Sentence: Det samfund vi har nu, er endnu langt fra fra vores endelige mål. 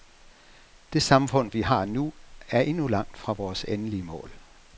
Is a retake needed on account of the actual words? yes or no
yes